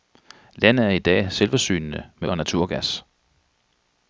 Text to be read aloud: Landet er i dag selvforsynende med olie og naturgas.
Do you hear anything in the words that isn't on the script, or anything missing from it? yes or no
yes